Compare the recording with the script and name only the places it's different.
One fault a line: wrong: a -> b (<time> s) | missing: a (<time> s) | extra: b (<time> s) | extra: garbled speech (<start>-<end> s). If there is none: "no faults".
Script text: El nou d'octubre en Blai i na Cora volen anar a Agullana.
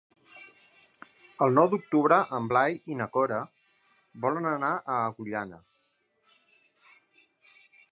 no faults